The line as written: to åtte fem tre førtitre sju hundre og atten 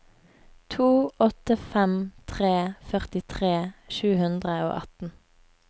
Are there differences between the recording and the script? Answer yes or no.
no